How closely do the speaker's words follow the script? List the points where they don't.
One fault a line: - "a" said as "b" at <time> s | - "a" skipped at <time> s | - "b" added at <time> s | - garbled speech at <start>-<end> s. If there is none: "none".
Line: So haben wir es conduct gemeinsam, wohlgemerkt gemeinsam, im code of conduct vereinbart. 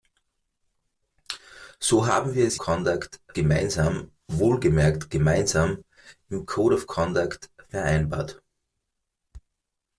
none